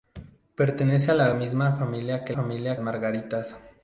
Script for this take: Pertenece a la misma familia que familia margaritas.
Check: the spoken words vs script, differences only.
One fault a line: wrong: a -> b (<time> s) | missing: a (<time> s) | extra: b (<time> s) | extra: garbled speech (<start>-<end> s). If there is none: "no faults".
no faults